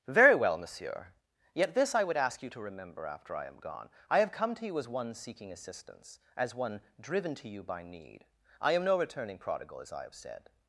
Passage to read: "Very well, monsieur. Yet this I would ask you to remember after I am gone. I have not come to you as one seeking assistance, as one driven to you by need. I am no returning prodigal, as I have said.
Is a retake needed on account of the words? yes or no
yes